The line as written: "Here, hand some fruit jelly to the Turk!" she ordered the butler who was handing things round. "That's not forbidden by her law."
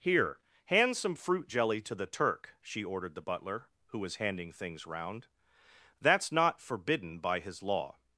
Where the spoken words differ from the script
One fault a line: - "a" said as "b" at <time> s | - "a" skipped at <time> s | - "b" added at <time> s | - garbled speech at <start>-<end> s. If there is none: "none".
- "her" said as "his" at 7.4 s